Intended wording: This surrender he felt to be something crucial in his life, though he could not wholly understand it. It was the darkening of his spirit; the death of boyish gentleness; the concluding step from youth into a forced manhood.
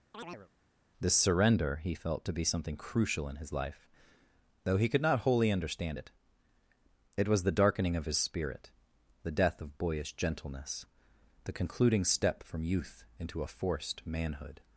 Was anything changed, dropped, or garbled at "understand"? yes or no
no